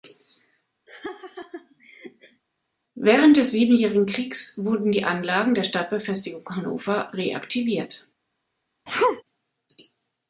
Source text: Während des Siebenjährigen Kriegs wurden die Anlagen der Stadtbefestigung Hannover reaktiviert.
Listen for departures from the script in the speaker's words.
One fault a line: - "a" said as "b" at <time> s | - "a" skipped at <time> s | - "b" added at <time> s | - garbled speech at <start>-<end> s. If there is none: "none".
none